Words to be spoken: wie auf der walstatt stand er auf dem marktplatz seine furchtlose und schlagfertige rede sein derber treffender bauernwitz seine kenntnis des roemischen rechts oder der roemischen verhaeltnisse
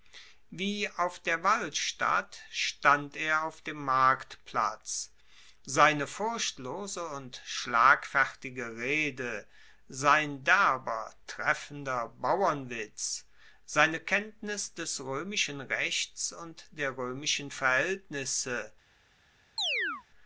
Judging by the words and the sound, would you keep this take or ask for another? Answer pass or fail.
fail